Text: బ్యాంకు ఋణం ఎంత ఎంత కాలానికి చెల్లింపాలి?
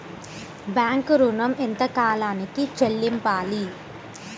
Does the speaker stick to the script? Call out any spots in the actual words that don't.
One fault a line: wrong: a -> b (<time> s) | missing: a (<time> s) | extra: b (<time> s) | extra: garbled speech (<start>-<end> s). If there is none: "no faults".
missing: ఎంత (1.8 s)